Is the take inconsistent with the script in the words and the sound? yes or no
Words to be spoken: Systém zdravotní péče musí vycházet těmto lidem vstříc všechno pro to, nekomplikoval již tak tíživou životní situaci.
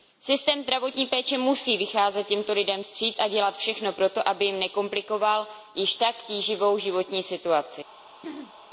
yes